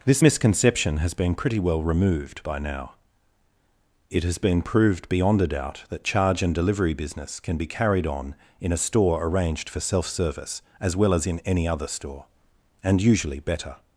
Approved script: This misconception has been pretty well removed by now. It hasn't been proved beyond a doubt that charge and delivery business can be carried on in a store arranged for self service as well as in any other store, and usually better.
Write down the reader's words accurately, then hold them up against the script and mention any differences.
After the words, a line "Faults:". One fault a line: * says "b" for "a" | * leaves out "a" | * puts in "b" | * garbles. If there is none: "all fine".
This misconception has been pretty well removed by now. It has been proved beyond a doubt that charge and delivery business can be carried on in a store arranged for self service as well as in any other store, and usually better.
Faults:
* says "has" for "hasn't"